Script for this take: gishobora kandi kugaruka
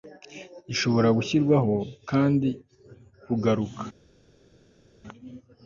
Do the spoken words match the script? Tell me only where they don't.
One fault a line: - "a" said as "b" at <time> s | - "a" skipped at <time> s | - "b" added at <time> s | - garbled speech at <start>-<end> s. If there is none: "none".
- "gushyirwaho" added at 1.2 s